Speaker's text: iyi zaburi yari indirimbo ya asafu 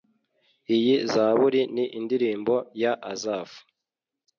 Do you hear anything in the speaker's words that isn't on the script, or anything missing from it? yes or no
yes